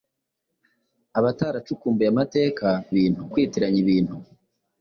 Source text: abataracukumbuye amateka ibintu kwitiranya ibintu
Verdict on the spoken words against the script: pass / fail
pass